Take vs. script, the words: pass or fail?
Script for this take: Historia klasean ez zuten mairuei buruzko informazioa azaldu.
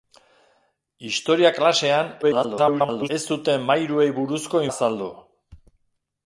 fail